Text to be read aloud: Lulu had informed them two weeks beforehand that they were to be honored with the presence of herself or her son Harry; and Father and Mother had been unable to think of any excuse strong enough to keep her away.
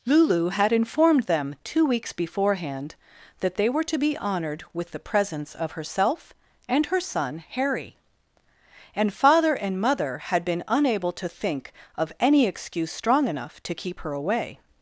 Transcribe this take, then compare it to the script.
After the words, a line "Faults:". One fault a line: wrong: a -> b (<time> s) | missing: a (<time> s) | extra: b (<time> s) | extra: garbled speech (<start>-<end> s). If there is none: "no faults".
Lulu had informed them two weeks beforehand that they were to be honored with the presence of herself and her son Harry; and Father and Mother had been unable to think of any excuse strong enough to keep her away.
Faults:
wrong: or -> and (6.7 s)